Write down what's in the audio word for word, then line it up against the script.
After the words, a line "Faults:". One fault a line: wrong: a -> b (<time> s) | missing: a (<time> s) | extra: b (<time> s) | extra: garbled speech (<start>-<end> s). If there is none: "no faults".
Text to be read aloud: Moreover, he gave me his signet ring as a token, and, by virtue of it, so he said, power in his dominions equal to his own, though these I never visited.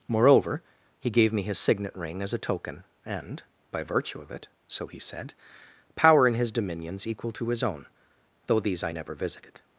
Moreover, he gave me his signet ring as a token, and, by virtue of it, so he said, power in his dominions equal to his own, though these I never visited.
Faults:
no faults